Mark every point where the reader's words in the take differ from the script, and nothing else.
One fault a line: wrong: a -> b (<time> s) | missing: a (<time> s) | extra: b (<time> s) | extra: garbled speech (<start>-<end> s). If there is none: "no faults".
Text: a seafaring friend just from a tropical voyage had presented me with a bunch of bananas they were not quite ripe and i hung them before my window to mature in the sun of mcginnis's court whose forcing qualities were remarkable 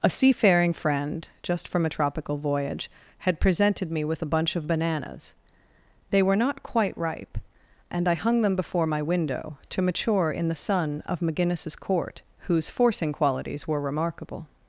no faults